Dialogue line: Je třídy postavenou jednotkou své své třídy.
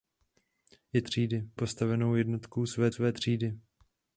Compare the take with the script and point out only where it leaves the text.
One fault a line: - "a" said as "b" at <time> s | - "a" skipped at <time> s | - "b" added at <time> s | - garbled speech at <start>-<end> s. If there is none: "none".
none